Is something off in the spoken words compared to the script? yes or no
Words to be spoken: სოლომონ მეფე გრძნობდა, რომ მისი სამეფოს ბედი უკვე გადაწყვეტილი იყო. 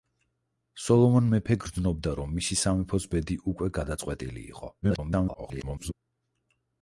yes